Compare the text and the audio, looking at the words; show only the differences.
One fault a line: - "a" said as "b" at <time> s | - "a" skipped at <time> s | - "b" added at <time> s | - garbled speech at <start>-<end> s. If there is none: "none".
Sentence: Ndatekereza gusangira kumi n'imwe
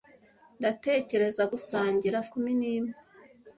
none